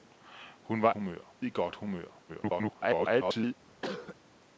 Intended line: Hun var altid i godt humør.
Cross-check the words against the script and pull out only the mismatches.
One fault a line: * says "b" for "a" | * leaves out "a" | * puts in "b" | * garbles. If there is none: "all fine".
* says "humør" for "altid"
* garbles